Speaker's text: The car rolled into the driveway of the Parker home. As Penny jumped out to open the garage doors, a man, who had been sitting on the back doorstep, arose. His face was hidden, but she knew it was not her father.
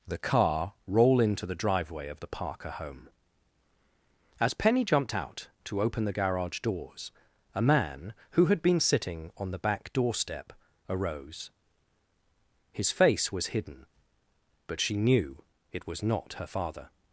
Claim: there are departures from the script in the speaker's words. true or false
true